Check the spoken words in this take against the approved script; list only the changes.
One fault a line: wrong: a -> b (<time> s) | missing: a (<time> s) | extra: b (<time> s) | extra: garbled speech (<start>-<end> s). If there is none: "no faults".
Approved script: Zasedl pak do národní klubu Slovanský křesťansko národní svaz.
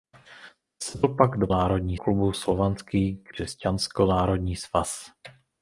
no faults